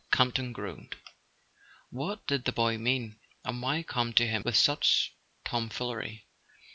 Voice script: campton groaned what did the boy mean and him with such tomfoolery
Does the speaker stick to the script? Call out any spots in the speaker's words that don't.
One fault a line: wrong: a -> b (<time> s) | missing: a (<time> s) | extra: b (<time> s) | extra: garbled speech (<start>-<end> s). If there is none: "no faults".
extra: why come to (3.6 s)